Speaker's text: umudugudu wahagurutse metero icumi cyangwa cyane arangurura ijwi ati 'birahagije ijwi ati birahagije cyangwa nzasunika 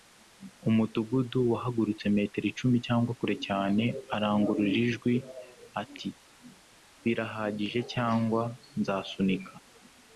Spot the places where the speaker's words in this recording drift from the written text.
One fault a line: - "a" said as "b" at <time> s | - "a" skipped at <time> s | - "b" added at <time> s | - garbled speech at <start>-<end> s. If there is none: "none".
- "kure" added at 3.2 s
- "ijwi ati birahagije" skipped at 7.8 s